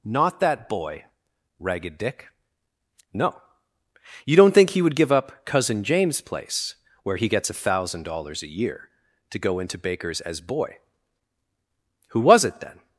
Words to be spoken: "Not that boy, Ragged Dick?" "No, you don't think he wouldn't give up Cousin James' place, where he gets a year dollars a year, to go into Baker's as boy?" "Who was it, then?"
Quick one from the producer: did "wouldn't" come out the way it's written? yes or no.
no